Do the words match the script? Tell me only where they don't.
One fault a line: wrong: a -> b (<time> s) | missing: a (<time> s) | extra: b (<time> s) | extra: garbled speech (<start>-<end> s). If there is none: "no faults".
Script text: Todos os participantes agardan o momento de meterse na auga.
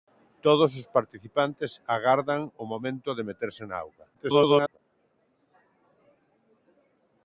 extra: garbled speech (4.1-4.8 s)